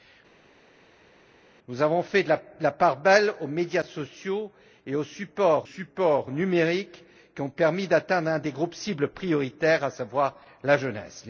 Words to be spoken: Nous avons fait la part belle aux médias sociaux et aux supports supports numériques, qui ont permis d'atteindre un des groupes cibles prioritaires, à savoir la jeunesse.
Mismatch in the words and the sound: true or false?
false